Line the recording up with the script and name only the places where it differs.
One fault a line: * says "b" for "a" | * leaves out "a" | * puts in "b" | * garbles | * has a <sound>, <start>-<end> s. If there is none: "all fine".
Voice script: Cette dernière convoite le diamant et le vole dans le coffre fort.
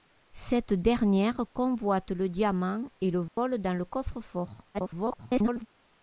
* has a dropout, 3.3-3.4 s
* garbles